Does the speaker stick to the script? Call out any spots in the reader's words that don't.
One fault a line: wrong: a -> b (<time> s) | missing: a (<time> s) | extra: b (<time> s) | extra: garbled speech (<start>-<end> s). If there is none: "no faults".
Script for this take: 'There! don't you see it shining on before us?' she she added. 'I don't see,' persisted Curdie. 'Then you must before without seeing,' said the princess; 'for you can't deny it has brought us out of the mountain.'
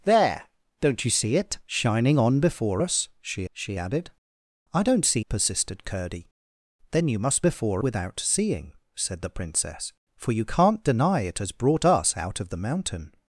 no faults